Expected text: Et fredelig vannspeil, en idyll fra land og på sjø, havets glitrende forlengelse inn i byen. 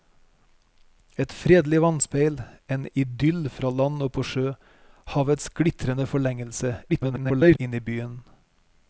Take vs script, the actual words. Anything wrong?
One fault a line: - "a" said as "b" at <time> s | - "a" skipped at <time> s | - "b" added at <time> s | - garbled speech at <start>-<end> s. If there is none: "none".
- garbled speech at 6.9-7.6 s